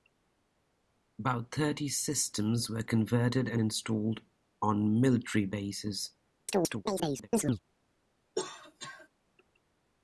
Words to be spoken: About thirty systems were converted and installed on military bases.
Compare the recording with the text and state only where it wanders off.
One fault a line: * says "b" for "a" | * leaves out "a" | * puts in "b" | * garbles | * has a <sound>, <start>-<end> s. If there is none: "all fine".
* has a chirp, 6.5-7.6 s
* has a cough, 8.4-9.1 s